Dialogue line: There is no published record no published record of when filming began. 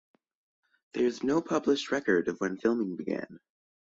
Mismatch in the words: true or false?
true